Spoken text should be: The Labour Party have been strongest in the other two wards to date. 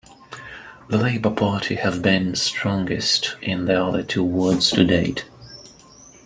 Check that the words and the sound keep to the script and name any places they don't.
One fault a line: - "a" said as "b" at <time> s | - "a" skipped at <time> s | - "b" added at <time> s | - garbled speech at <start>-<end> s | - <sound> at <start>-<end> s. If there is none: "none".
none